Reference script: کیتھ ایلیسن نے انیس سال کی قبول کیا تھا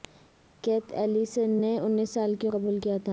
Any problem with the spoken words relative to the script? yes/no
no